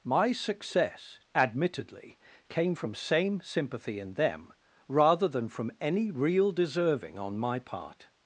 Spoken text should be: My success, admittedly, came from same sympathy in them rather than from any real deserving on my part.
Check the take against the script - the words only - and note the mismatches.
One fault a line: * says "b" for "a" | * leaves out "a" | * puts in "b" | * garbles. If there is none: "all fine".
all fine